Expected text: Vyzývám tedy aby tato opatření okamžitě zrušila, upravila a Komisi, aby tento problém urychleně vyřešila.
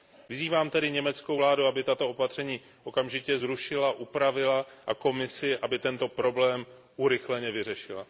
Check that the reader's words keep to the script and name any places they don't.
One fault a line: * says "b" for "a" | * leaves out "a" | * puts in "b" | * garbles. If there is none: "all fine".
* puts in "německou vládu"